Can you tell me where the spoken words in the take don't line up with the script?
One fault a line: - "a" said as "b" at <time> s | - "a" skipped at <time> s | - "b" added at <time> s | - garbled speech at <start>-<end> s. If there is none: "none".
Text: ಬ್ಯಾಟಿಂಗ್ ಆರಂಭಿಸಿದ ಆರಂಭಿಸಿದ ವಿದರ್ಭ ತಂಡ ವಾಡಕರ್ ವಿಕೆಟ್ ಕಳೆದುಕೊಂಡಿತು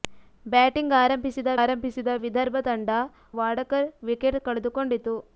none